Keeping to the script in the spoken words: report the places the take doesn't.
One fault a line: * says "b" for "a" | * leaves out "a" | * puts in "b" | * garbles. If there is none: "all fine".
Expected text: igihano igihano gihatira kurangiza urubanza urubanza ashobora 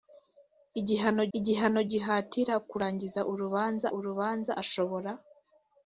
all fine